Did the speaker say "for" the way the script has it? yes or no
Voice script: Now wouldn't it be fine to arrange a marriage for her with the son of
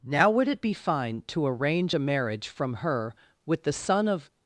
no